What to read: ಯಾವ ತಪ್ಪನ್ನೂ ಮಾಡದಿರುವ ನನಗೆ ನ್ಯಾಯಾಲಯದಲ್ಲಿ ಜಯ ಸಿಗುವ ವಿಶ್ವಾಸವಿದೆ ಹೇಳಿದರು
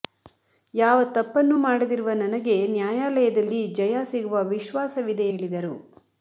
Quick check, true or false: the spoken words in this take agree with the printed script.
true